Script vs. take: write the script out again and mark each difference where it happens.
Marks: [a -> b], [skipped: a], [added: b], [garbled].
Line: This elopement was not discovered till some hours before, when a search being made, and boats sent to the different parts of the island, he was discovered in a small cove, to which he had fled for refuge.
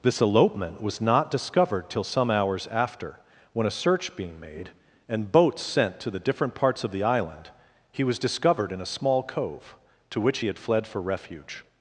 This elopement was not discovered till some hours [before, -> after] when a search being made, and boats sent to the different parts of the island, he was discovered in a small cove, to which he had fled for refuge.